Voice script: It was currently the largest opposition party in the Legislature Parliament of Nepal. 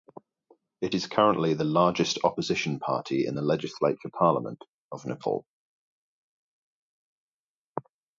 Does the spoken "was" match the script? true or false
false